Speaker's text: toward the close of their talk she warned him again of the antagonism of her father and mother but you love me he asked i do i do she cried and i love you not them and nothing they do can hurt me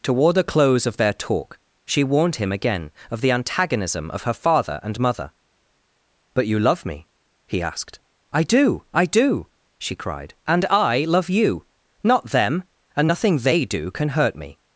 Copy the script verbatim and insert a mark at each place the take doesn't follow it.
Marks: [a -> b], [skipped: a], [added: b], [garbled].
toward the close of their talk she warned him again of the antagonism of her father and mother but you love me he asked i do i do she cried and i love you not them and nothing they do can hurt me